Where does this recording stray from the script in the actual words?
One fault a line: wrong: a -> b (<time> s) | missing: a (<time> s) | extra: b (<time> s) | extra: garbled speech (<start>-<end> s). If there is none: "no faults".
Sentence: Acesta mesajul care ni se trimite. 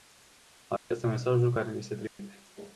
no faults